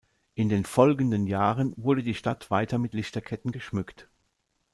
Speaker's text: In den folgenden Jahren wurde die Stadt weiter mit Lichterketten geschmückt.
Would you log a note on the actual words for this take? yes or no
no